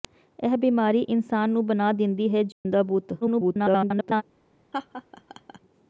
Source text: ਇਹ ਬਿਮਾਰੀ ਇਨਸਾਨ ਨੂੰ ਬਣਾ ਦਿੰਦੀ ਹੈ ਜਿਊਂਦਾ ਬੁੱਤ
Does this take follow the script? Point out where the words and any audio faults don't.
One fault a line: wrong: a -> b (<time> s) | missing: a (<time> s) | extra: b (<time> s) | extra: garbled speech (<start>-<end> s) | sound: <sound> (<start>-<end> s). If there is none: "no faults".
sound: dropout (2.5-2.7 s)
extra: garbled speech (3.2-4.2 s)
sound: laugh (4.7-5.6 s)